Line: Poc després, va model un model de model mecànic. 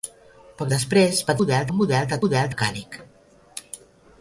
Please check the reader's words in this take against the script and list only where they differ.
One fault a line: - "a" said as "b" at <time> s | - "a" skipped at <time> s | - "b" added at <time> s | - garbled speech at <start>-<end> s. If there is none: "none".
none